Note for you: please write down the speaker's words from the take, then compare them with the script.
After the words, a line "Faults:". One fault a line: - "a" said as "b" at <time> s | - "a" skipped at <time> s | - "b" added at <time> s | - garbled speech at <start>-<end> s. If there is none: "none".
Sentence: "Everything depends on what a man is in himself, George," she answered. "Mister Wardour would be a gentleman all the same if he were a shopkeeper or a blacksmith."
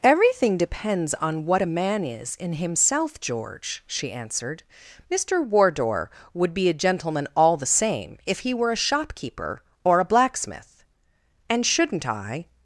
"Everything depends on what a man is in himself, George," she answered. "Mister Wardour would be a gentleman all the same if he were a shopkeeper or a blacksmith." "And shouldn't I
Faults:
- "And shouldn't I" added at 11.5 s